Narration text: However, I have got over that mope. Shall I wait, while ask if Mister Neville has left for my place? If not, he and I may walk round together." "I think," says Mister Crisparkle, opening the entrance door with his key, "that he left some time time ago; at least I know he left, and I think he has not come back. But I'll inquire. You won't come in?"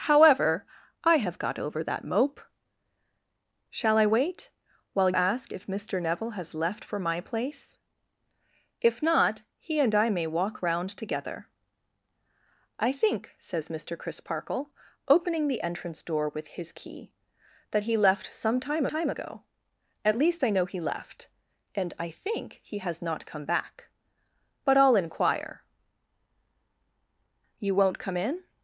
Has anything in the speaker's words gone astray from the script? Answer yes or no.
no